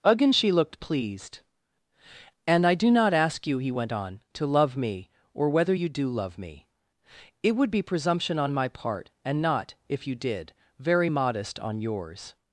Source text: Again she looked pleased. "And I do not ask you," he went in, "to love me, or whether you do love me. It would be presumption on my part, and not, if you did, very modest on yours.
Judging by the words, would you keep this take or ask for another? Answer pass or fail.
fail